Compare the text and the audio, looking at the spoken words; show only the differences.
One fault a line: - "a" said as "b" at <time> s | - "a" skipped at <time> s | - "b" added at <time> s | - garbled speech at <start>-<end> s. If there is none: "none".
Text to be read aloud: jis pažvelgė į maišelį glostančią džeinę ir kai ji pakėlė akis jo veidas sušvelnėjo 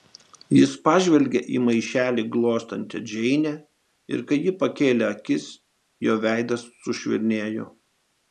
none